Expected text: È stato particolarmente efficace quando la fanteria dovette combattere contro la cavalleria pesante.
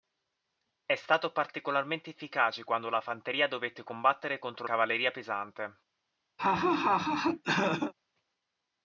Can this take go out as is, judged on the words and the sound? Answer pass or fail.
fail